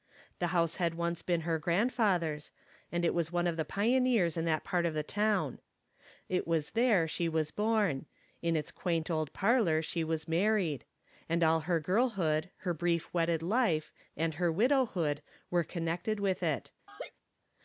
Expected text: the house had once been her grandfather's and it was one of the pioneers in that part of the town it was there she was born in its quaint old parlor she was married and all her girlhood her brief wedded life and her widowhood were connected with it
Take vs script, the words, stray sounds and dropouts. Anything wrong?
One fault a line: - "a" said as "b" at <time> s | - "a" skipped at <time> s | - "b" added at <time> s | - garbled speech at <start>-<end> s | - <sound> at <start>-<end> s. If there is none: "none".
- laugh at 16.9-17.1 s